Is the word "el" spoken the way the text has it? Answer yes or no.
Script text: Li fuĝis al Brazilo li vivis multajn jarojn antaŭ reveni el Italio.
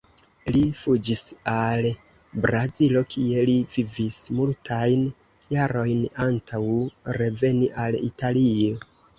no